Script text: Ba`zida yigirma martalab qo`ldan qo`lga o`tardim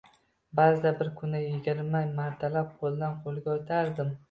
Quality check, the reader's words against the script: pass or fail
fail